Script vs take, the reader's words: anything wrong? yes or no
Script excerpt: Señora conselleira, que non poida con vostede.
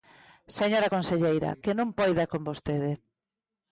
no